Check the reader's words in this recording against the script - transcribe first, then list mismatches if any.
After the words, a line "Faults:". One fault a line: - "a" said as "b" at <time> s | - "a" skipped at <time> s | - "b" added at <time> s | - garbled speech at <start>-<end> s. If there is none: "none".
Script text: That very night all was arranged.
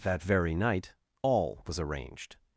That very night all was arranged.
Faults:
none